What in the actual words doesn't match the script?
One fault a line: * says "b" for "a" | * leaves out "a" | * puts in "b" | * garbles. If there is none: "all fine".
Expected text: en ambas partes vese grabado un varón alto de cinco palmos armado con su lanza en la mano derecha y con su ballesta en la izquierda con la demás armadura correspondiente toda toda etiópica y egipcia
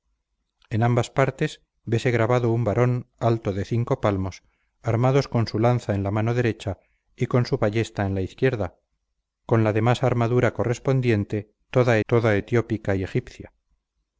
all fine